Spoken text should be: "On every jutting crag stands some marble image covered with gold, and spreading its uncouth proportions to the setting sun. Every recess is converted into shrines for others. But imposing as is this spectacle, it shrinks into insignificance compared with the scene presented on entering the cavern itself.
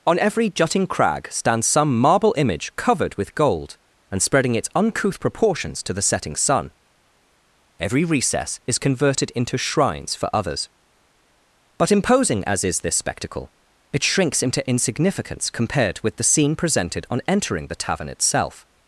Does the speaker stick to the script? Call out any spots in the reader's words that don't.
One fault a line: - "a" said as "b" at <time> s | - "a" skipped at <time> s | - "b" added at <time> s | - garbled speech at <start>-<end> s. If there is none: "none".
- "cavern" said as "tavern" at 17.8 s